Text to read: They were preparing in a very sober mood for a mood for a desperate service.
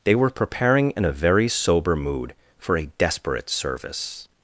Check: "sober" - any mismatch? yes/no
no